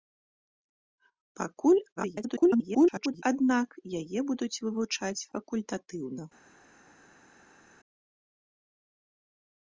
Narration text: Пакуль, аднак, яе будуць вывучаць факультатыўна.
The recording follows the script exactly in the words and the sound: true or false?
false